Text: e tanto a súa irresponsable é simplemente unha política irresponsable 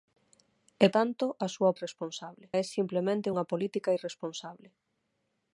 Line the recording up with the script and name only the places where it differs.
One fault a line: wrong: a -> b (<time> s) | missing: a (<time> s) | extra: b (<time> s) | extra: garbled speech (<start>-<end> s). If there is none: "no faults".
no faults